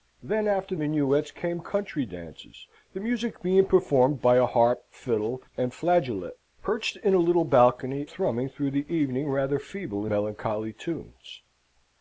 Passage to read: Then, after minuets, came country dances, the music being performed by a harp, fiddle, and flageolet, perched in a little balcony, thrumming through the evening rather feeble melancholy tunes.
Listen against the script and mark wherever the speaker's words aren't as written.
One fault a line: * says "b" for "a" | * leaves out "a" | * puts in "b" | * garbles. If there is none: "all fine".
all fine